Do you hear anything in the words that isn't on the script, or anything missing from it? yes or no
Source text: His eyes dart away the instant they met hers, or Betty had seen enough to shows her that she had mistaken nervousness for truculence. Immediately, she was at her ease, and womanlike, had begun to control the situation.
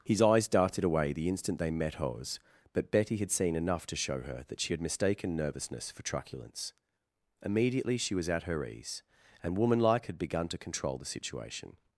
yes